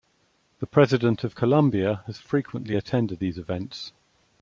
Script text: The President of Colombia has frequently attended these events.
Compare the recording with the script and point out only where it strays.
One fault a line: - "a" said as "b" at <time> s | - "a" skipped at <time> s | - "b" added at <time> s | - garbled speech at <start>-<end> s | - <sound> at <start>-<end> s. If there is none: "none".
none